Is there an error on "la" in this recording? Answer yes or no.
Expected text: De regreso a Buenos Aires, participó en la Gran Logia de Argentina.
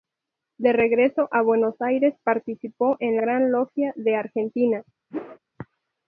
yes